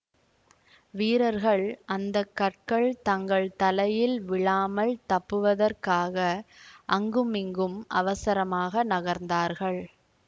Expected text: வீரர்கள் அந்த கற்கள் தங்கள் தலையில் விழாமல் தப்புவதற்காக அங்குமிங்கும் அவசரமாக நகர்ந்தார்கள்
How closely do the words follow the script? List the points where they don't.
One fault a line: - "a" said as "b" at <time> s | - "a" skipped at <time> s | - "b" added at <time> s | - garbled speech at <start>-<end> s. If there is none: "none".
none